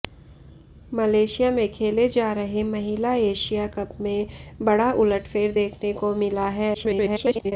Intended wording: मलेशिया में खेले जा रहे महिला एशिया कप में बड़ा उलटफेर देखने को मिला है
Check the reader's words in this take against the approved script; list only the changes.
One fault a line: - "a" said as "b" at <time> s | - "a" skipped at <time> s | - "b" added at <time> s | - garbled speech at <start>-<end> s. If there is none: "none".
- garbled speech at 6.7-7.5 s